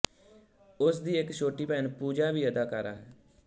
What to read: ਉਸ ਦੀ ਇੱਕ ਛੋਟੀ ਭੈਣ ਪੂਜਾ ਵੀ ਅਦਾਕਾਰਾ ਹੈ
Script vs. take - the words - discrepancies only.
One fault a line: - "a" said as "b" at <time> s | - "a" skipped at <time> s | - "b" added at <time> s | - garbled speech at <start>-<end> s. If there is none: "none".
none